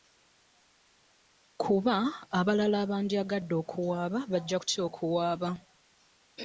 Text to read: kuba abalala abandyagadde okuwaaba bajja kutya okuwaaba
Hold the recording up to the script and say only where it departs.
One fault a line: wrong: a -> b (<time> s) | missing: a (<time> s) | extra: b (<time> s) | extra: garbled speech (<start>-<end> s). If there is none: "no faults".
no faults